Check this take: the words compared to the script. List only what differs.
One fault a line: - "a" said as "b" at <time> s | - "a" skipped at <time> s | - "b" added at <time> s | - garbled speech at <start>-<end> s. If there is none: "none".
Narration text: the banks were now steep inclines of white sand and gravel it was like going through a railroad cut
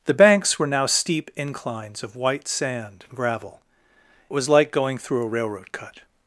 - "it" skipped at 3.6 s